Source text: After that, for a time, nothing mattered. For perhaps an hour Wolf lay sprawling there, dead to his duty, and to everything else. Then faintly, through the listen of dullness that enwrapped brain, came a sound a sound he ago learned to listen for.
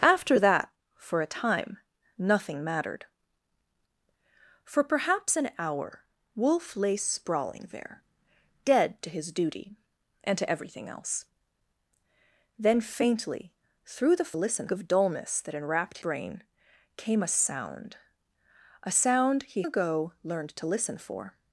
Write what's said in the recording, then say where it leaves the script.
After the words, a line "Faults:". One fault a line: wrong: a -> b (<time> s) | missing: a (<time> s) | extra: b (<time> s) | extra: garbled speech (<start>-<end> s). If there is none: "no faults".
After that, for a time, nothing mattered. For perhaps an hour Wolf lay sprawling there, dead to his duty, and to everything else. Then faintly, through the listen of dullness that enwrapped brain, came a sound a sound he ago learned to listen for.
Faults:
no faults